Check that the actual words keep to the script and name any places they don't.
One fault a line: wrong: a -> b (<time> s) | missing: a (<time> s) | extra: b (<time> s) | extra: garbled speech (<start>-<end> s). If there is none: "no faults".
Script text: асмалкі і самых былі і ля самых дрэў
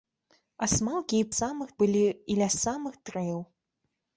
no faults